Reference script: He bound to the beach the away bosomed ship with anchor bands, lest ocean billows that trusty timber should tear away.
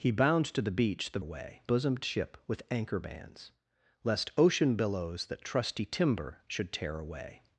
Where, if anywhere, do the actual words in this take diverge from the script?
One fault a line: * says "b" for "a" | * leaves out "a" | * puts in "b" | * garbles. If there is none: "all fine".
all fine